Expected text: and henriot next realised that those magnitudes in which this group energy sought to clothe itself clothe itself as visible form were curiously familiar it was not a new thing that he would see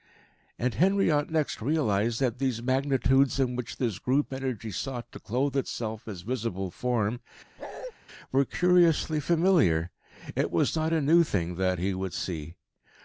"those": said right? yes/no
no